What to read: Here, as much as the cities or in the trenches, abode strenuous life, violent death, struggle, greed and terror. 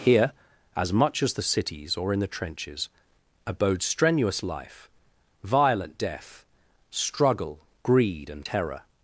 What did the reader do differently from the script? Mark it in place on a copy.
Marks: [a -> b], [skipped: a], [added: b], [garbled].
Here, as much as the cities or in the trenches, abode strenuous life, violent death, struggle, greed and terror.